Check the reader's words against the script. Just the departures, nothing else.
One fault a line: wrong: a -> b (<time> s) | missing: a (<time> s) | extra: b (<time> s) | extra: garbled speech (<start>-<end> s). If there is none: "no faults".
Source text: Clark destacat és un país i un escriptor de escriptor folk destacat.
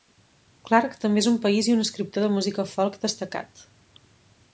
wrong: destacat -> també (1.0 s)
wrong: escriptor -> música (2.4 s)